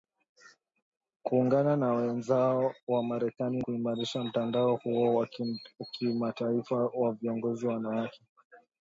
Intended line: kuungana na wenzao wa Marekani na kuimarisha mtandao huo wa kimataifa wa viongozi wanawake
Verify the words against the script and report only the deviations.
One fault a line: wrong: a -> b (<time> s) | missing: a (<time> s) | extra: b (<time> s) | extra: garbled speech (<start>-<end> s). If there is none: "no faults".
missing: na (3.6 s)